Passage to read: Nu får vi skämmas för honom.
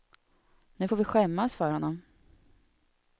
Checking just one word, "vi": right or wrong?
right